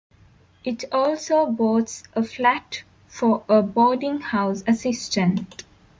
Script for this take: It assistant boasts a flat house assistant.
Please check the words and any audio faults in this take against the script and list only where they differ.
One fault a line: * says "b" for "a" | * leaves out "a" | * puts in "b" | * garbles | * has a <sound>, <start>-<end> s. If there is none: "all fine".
* says "also" for "assistant"
* puts in "for a boarding"